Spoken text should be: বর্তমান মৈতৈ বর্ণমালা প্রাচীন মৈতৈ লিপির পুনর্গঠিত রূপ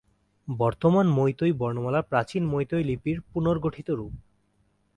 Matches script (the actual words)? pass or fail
pass